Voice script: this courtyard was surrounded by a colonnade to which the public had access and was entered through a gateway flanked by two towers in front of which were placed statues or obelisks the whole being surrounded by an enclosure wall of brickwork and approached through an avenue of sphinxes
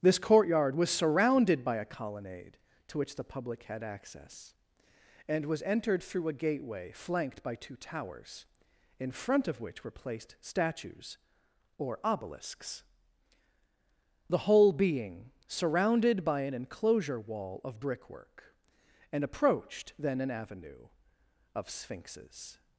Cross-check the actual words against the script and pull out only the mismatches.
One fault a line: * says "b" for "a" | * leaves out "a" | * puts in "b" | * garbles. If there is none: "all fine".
* says "then" for "through"